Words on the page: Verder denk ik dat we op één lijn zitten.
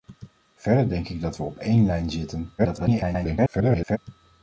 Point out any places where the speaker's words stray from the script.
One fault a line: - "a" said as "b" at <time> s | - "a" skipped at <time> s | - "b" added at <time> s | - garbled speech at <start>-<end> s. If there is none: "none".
- garbled speech at 2.6-4.0 s